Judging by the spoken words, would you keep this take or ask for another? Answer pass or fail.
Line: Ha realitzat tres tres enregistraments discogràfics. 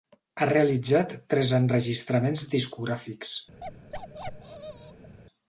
fail